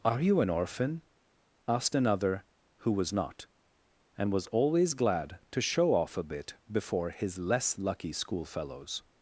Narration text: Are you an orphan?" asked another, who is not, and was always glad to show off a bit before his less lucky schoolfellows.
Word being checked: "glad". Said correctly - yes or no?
yes